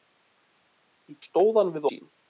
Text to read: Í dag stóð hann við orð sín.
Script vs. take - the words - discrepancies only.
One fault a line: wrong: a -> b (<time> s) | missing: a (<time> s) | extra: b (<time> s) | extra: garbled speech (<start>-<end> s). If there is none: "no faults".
missing: dag (1.2 s)
missing: orð (1.9 s)